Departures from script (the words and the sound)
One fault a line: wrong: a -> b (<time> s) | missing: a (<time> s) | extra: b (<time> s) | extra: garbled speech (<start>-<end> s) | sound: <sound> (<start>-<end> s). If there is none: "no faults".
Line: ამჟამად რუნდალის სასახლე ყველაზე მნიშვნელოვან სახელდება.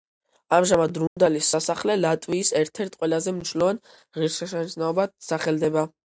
sound: dropout (1.1-1.2 s)
extra: ლატვიის ერთ ერთ (2.0 s)
extra: ღირსშესანიშნაობად (4.2 s)